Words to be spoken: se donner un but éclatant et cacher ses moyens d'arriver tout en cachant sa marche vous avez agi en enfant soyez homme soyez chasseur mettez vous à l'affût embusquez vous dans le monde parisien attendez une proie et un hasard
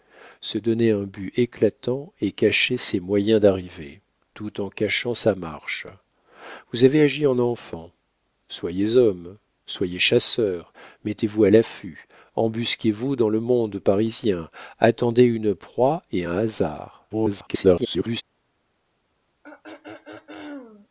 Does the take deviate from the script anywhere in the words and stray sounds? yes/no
yes